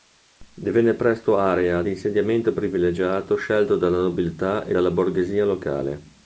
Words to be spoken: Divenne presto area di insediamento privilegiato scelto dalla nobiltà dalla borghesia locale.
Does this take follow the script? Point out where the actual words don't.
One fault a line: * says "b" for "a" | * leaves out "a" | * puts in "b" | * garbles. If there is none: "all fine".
* puts in "e"